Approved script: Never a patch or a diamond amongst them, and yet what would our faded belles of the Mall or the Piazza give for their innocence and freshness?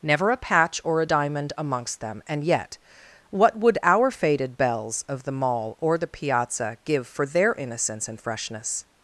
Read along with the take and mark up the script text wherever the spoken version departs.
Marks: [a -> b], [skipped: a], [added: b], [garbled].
Never a patch or a diamond amongst them, and yet what would our faded belles of the Mall or the Piazza give for their innocence and freshness?